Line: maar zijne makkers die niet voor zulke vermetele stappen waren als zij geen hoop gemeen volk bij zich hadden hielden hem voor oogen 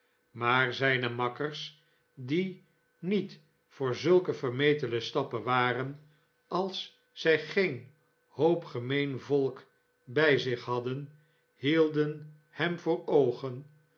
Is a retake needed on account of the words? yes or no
no